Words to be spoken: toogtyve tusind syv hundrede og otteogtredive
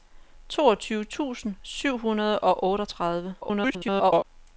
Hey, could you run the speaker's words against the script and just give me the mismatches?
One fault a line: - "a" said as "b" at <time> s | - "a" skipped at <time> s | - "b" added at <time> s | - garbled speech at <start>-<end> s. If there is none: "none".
- garbled speech at 3.4-4.2 s